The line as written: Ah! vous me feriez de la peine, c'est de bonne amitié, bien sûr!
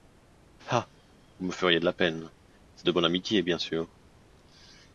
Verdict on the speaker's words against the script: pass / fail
pass